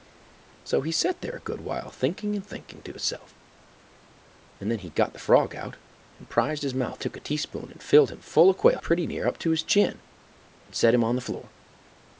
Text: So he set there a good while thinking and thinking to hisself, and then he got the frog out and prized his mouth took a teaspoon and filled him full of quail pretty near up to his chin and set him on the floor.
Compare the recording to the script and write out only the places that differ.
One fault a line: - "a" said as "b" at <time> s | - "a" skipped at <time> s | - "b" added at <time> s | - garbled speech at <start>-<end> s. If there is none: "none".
none